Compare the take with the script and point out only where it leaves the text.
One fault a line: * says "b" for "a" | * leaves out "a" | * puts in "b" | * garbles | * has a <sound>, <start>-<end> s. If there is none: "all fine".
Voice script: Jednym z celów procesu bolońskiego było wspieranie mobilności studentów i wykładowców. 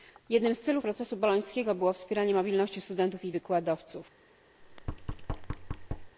* has a thud, 4.6-6.1 s